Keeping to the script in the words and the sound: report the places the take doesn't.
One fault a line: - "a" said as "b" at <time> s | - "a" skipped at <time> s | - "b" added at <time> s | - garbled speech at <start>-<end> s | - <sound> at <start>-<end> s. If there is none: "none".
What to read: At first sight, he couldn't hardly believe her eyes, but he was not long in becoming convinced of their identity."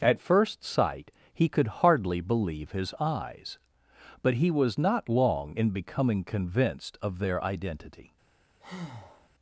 - "couldn't" said as "could" at 1.5 s
- "her" said as "his" at 2.7 s
- breath at 8.6-9.3 s